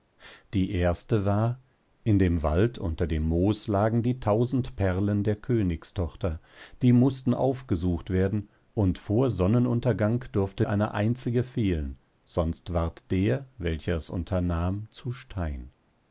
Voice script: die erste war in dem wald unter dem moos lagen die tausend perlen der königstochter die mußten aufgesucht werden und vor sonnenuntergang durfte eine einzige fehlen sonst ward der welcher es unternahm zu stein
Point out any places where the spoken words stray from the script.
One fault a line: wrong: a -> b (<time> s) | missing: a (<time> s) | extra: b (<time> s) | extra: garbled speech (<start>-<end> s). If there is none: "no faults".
no faults